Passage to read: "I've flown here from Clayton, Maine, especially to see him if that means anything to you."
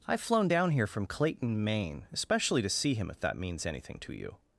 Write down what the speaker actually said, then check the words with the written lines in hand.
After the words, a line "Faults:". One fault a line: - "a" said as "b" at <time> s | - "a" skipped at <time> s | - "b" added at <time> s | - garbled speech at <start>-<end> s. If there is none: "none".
"I've flown down here from Clayton, Maine, especially to see him if that means anything to you."
Faults:
- "down" added at 0.5 s